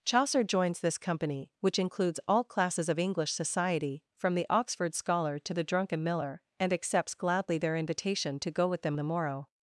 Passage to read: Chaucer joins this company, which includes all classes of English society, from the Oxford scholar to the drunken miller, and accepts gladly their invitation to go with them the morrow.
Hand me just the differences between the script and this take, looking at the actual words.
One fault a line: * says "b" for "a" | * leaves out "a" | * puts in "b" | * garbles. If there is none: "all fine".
all fine